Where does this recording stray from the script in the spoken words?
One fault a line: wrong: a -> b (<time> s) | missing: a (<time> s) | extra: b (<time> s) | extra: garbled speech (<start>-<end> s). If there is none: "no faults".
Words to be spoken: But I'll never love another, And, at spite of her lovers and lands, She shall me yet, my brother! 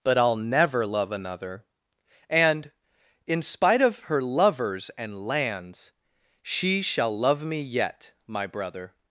wrong: at -> in (3.3 s)
extra: love (7.2 s)